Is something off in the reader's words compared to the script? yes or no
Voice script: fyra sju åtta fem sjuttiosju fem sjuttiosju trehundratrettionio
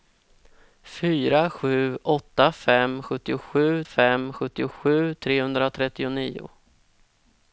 no